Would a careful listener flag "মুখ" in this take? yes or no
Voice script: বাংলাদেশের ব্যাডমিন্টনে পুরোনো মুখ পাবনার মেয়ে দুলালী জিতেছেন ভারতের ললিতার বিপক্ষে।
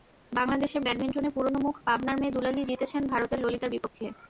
no